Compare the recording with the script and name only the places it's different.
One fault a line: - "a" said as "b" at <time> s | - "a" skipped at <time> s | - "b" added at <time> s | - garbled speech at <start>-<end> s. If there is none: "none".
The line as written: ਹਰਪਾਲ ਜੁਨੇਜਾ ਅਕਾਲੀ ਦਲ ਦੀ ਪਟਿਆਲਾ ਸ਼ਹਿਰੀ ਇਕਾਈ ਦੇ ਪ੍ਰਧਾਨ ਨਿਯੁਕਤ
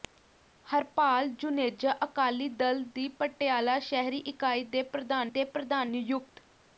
- "ਦੇ ਪ੍ਰਧਾਨ" added at 5.3 s